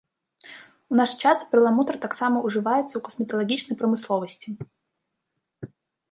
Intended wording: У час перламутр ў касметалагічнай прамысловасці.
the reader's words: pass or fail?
fail